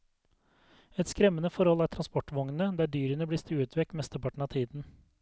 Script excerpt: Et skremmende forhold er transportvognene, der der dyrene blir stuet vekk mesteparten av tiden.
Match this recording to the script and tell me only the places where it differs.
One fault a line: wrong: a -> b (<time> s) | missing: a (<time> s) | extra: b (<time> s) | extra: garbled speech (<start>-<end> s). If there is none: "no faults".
missing: der (2.9 s)